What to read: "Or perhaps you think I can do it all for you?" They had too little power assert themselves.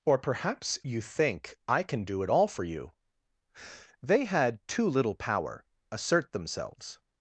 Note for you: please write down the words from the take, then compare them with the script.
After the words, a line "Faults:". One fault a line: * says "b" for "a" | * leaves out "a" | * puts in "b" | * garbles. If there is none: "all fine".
"Or perhaps you think I can do it all for you?" They had too little power assert themselves.
Faults:
all fine